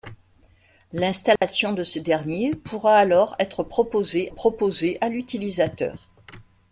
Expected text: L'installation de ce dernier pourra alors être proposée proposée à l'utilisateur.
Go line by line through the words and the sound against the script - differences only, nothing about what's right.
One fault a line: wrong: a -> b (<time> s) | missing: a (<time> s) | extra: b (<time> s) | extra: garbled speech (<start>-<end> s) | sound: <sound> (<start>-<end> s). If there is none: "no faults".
sound: dropout (1.4-1.4 s)